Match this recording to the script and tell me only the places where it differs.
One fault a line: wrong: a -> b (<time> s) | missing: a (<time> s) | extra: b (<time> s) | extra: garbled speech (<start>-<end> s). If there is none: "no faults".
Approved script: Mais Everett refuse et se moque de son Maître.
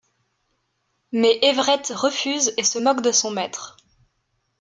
no faults